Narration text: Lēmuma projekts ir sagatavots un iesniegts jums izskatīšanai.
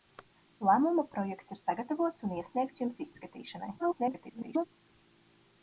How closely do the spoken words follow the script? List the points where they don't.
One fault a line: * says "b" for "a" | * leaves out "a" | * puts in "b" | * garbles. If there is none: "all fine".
* garbles